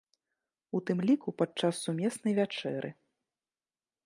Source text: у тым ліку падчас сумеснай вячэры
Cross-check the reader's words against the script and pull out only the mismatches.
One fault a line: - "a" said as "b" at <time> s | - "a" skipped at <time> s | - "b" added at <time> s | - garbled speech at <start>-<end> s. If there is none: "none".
none